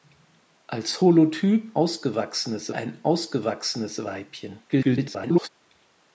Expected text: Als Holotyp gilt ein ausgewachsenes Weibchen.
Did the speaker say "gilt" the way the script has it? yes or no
no